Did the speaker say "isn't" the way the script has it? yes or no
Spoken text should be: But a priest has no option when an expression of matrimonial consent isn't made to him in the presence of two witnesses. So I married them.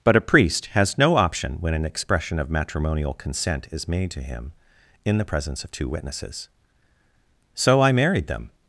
no